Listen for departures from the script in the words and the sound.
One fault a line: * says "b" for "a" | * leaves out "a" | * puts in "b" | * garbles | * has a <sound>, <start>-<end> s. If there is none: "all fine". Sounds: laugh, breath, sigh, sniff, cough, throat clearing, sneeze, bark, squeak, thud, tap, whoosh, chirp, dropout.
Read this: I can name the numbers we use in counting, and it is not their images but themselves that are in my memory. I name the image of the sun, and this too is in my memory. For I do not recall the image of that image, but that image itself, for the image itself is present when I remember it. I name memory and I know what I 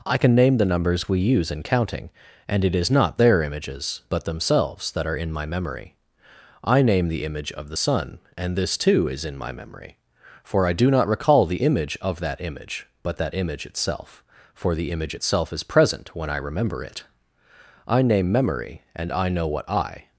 all fine